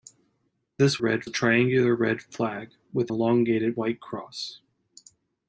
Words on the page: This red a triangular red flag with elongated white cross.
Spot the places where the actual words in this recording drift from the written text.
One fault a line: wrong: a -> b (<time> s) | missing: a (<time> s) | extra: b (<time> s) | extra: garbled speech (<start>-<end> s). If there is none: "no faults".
no faults